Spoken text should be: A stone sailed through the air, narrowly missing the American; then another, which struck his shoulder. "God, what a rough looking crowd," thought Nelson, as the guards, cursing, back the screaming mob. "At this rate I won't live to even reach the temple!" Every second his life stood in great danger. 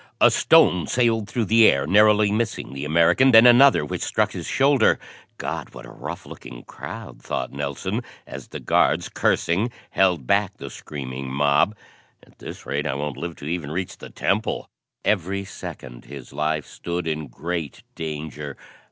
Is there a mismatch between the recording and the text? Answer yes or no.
yes